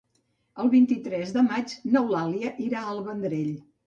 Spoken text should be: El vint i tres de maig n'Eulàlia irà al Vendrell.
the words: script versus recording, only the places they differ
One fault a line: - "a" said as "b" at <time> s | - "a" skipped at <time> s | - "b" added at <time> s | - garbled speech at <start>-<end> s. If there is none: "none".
none